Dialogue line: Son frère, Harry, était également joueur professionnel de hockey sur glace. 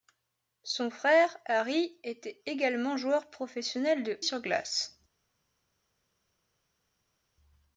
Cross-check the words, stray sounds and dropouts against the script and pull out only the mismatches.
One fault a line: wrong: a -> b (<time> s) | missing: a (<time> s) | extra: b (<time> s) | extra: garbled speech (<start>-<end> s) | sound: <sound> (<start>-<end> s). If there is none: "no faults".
missing: hockey (4.2 s)